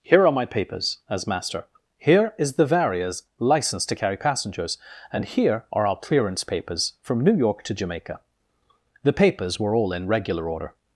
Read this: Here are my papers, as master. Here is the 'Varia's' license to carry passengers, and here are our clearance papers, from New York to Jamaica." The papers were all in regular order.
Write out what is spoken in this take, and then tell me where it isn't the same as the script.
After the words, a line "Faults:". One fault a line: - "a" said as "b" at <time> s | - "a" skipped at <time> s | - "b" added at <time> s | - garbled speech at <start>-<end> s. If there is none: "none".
Here are my papers, as master. Here is the 'Varia's' license to carry passengers, and here are our clearance papers, from New York to Jamaica." The papers were all in regular order.
Faults:
none